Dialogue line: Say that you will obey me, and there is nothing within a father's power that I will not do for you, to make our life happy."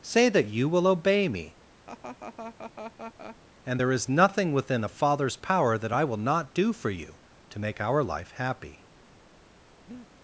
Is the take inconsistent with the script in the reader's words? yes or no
no